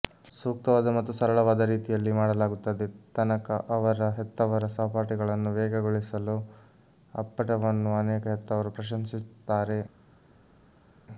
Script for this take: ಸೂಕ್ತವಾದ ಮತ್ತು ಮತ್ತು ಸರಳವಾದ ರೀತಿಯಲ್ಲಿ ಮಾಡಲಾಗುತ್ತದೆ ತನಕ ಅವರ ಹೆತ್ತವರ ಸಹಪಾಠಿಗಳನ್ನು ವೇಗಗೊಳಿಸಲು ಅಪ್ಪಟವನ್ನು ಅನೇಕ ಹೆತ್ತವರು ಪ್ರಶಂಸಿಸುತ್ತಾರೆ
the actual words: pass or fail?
fail